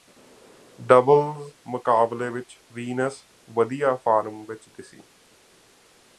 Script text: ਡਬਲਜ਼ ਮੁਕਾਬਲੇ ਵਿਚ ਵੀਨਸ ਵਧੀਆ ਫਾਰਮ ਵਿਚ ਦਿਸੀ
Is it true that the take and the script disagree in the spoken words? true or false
false